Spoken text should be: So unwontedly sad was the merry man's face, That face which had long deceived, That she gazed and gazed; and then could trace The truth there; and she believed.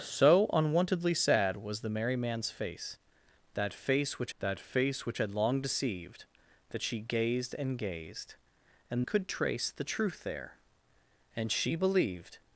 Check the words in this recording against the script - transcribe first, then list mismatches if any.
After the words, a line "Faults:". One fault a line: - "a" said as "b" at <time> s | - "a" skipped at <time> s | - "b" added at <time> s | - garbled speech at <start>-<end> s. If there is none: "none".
So unwontedly sad was the merry man's face, That face which That face which had long deceived, That she gazed and gazed; and could trace The truth there; and she believed.
Faults:
- "That face which" added at 4.4 s
- "then" skipped at 9.1 s